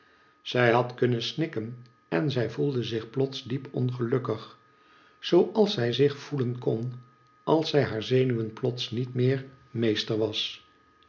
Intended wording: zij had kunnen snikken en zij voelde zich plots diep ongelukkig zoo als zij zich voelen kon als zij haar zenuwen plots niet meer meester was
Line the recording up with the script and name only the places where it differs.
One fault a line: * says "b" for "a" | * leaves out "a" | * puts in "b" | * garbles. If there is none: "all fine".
all fine